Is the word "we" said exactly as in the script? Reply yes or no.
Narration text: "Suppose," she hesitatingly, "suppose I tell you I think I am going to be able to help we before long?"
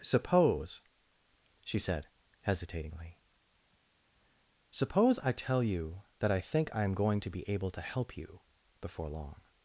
no